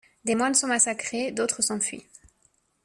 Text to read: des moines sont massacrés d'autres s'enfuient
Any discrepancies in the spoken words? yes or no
no